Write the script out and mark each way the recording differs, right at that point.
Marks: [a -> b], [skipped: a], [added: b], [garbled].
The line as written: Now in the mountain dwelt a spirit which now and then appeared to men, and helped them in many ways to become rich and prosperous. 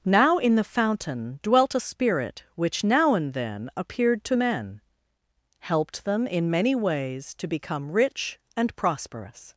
Now in the [mountain -> fountain] dwelt a spirit which now and then appeared to men, [skipped: and] helped them in many ways to become rich and prosperous.